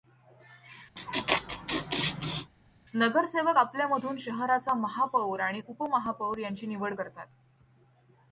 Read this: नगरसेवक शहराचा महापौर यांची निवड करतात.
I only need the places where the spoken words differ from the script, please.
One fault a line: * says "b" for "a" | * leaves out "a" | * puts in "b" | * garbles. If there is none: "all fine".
* puts in "आपल्यामधून"
* puts in "आणि उपमहापौर"